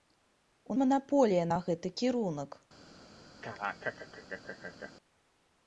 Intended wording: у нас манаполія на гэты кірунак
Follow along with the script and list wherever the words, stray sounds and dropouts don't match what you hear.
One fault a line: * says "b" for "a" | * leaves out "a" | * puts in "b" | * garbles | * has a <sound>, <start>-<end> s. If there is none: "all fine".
* leaves out "нас"
* has a laugh, 3.4-4.9 s